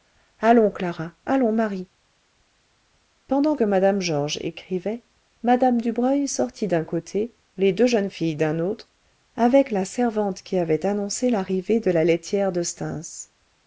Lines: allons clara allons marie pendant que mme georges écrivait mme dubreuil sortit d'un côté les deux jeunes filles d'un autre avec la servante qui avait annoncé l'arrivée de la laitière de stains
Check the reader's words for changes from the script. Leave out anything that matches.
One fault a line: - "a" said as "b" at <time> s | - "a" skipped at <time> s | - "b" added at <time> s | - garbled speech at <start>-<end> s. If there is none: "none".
none